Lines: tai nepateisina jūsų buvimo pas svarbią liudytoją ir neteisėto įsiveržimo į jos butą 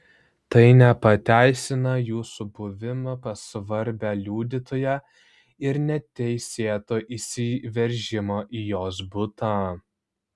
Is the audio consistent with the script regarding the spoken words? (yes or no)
yes